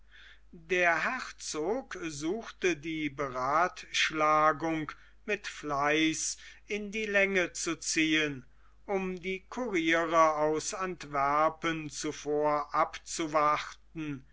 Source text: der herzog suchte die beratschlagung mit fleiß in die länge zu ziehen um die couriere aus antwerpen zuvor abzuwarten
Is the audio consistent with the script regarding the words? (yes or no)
yes